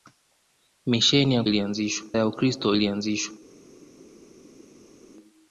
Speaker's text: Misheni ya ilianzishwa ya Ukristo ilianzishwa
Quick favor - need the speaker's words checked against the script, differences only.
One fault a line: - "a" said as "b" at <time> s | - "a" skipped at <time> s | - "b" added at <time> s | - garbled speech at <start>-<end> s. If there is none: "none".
none